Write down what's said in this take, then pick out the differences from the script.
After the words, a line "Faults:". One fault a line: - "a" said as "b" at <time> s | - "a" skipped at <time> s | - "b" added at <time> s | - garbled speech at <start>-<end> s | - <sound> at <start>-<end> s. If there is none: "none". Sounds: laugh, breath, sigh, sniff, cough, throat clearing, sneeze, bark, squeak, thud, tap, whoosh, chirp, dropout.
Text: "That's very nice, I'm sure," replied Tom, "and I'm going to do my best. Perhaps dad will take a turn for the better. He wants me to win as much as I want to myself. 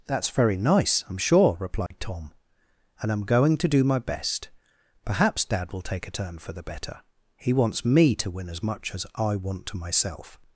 "That's very nice, I'm sure," replied Tom, "and I'm going to do my best. Perhaps dad will take a turn for the better. He wants me to win as much as I want to myself.
Faults:
- dropout at 1.9-1.9 s